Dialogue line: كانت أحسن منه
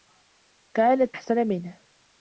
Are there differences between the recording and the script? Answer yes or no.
no